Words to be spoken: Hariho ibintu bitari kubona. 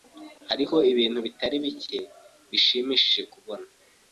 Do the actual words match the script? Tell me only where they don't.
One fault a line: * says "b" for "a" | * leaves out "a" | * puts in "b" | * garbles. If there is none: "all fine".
* puts in "bike bishimishije"